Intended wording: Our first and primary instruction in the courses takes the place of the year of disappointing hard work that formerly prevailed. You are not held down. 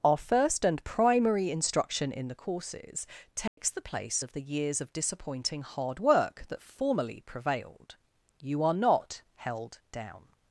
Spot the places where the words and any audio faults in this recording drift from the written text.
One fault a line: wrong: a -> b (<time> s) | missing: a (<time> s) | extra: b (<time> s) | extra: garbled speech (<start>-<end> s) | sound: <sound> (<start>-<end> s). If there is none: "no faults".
sound: dropout (3.5-3.6 s)
wrong: year -> years (4.4 s)